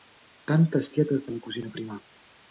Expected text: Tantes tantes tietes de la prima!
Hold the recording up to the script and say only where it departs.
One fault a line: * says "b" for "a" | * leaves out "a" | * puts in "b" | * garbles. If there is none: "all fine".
* leaves out "tantes"
* puts in "cosina"